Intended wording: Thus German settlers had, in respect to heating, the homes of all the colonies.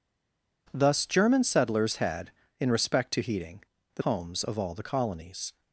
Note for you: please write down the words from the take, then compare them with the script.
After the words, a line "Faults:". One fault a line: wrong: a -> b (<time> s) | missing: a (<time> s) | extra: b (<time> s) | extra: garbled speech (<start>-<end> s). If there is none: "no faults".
Thus German settlers had, in respect to heating, the homes of all the colonies.
Faults:
no faults